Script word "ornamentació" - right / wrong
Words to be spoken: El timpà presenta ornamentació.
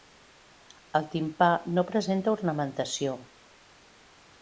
right